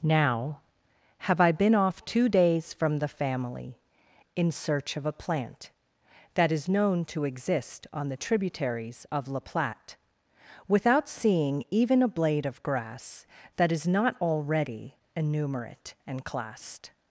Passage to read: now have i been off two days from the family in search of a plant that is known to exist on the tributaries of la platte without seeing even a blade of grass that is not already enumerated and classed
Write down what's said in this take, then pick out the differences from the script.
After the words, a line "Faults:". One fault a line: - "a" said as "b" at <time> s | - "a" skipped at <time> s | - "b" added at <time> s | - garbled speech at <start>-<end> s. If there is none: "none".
now have i been off two days from the family in search of a plant that is known to exist on the tributaries of la platte without seeing even a blade of grass that is not already enumerate and classed
Faults:
- "enumerated" said as "enumerate" at 15.2 s